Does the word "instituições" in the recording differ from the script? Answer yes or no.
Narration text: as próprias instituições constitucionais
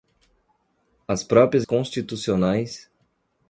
yes